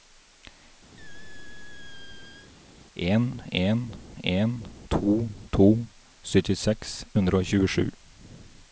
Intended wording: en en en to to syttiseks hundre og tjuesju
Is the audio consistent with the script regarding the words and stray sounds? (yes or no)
no